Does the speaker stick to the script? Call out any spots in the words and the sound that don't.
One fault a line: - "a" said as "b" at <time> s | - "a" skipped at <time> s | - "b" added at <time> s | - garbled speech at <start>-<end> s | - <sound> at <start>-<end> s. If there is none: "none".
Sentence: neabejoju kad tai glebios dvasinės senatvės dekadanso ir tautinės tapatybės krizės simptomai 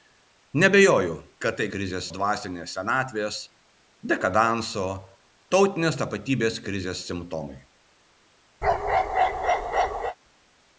- "glebios" said as "krizės" at 1.7 s
- "ir" skipped at 4.9 s
- bark at 8.6-10.2 s